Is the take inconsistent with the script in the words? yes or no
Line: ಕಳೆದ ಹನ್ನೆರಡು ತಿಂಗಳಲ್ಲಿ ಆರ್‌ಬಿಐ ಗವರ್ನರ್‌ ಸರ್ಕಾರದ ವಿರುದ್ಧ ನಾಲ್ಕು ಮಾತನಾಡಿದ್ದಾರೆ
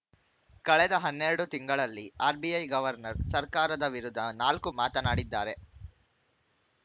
no